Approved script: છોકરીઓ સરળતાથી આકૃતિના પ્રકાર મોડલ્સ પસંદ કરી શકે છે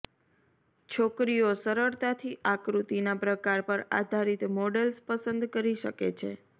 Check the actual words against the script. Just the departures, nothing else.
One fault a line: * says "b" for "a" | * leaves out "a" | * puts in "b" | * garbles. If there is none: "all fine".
* puts in "પર આધારિત"